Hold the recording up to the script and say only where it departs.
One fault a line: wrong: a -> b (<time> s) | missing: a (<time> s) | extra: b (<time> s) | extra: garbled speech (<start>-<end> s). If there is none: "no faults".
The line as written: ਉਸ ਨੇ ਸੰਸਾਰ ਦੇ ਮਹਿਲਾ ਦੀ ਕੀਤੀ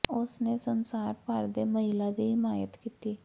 extra: ਭਰ (1.3 s)
extra: ਹਿਮਾਇਤ (2.3 s)